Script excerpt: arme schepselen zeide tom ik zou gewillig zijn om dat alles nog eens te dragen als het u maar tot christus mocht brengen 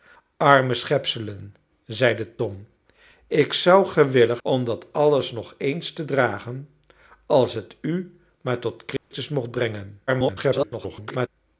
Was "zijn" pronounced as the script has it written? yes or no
no